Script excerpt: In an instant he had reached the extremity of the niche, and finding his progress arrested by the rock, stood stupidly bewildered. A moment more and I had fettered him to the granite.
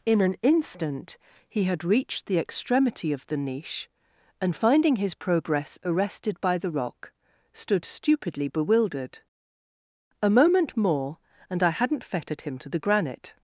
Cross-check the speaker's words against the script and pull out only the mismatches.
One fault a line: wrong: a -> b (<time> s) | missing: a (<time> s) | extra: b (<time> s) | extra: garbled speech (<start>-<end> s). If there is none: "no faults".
wrong: had -> hadn't (11.7 s)